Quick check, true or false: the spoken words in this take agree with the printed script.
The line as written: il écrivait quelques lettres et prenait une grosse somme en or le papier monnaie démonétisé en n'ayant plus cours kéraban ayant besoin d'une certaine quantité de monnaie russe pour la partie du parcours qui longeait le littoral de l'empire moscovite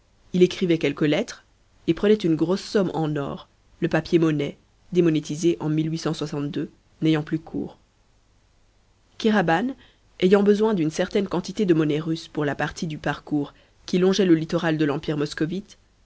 true